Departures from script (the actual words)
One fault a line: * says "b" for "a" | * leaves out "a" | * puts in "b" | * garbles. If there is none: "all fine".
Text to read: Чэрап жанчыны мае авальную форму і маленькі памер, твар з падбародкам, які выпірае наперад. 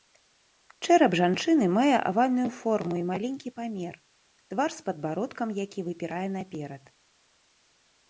all fine